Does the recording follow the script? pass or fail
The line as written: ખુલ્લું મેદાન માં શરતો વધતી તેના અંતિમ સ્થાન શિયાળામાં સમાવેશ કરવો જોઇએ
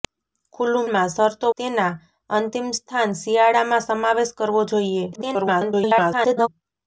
fail